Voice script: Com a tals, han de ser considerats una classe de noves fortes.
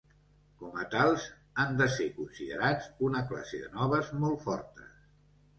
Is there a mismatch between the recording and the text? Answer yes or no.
yes